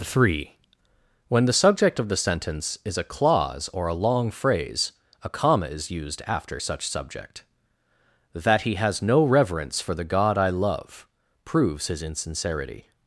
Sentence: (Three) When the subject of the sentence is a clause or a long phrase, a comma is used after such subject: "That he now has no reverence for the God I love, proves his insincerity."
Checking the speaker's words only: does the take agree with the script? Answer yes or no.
no